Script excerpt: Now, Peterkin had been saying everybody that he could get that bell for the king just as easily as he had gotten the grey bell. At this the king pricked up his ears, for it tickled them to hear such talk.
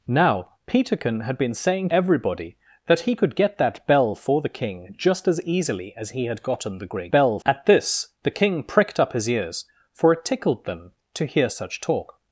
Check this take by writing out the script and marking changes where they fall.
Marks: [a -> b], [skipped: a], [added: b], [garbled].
Now, Peterkin had been saying everybody that he could get that bell for the king just as easily as he had gotten the grey bell. At this the king pricked up his ears, for it tickled them to hear such talk.